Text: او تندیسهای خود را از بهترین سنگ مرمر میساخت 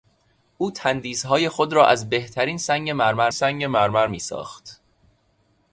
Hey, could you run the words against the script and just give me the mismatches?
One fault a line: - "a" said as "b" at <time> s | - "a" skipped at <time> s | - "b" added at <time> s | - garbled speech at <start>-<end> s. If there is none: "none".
- "سنگ مرمر" added at 3.3 s